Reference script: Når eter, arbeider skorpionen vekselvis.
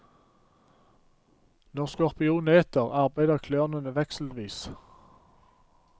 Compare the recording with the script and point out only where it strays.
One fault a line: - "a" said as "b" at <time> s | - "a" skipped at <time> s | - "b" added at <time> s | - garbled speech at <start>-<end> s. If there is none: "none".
- "skorpionen" added at 1.9 s
- "skorpionen" said as "klørene" at 3.5 s